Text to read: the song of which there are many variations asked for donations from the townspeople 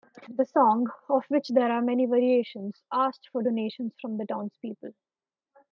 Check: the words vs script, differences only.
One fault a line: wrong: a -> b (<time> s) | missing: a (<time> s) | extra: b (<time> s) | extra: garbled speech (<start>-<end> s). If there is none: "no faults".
no faults